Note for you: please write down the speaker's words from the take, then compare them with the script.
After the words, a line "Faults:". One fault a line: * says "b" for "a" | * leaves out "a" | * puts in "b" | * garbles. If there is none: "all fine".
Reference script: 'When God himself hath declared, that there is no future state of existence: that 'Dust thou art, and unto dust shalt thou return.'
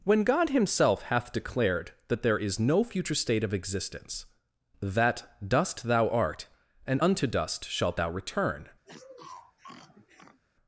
'When God himself hath declared, that there is no future state of existence: that 'Dust thou art, and unto dust shalt thou return.'
Faults:
all fine